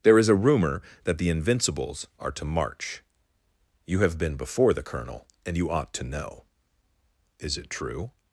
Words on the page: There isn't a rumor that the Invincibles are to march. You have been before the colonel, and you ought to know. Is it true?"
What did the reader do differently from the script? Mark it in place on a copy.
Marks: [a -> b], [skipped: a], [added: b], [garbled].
There [isn't -> is] a rumor that the Invincibles are to march. You have been before the colonel, and you ought to know. Is it true?"